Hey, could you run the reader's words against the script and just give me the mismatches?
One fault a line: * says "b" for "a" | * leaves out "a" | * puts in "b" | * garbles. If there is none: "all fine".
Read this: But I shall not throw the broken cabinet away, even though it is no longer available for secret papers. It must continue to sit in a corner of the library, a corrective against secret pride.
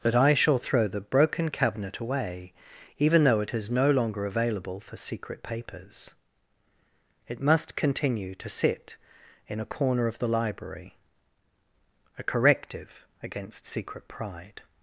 * leaves out "not"